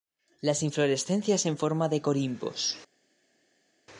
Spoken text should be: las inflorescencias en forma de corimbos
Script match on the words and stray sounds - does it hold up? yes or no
yes